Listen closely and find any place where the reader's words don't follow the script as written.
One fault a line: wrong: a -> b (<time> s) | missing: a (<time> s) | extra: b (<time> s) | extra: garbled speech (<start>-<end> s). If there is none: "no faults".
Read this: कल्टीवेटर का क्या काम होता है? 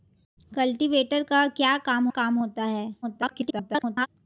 extra: काम (2.1 s)
extra: garbled speech (3.0-4.1 s)